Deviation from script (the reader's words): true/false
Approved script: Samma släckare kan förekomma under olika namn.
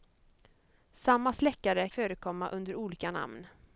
true